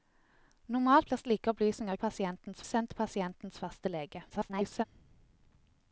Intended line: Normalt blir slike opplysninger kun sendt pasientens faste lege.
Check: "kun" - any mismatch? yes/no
yes